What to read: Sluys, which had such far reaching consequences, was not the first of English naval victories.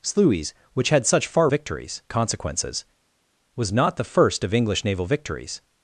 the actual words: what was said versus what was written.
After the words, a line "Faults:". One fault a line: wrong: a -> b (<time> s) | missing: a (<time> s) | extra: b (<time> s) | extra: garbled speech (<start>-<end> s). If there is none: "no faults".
Sluys, which had such far victories consequences, was not the first of English naval victories.
Faults:
wrong: reaching -> victories (1.5 s)